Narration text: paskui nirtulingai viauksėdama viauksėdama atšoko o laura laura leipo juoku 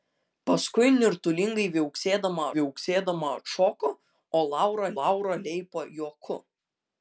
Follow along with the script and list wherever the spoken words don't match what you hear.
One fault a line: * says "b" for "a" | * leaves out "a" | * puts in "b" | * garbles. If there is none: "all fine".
all fine